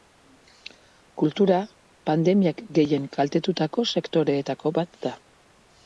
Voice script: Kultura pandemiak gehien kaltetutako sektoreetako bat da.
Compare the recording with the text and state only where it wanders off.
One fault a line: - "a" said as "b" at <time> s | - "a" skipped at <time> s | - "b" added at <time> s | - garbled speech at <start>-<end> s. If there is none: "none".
none